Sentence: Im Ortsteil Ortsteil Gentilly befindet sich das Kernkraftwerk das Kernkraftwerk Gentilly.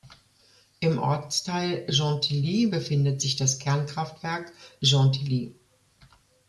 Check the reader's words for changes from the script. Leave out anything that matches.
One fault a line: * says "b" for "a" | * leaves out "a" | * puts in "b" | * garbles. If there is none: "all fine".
* leaves out "Ortsteil"
* leaves out "das Kernkraftwerk"